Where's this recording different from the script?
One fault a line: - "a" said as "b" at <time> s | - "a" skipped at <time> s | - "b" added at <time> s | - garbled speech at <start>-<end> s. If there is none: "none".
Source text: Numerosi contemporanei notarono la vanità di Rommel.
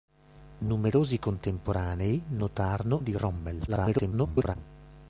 - "la vanità" skipped at 3.0 s
- garbled speech at 3.7-4.6 s